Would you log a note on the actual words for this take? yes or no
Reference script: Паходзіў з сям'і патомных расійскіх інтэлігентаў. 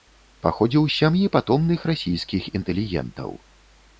no